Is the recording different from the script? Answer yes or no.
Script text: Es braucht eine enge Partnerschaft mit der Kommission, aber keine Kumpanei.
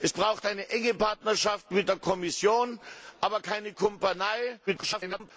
yes